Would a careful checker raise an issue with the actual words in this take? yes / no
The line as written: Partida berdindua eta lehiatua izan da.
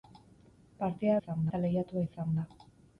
yes